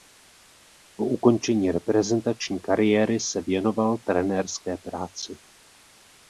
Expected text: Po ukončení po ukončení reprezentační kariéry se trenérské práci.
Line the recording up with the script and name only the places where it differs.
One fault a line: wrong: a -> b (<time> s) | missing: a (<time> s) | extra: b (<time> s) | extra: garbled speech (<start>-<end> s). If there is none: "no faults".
missing: po ukončení (1.7 s)
extra: věnoval (3.4 s)